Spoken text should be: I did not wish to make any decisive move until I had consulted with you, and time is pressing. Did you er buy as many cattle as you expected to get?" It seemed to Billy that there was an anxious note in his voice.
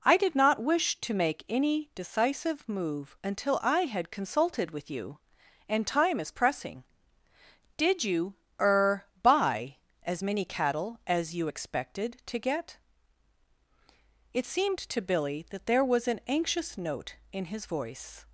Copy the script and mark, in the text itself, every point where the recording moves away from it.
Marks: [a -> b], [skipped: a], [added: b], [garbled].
I did not wish to make any decisive move until I had consulted with you, and time is pressing. Did you er buy as many cattle as you expected to get?" It seemed to Billy that there was an anxious note in his voice.